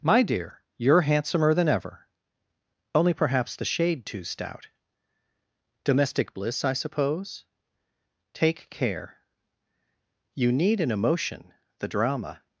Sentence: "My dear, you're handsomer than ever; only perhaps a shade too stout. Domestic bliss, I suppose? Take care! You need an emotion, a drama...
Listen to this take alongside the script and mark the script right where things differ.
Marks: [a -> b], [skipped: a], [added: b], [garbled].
"My dear, you're handsomer than ever; only perhaps [a -> the] shade too stout. Domestic bliss, I suppose? Take care! You need an emotion, [a -> the] drama...